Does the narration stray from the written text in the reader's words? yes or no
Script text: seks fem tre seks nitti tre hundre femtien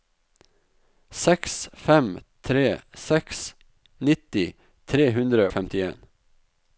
no